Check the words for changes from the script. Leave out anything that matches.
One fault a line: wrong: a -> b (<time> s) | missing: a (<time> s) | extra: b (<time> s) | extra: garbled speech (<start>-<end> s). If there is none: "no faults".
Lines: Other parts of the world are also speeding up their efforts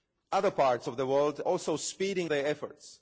missing: are (1.4 s)
missing: up (2.3 s)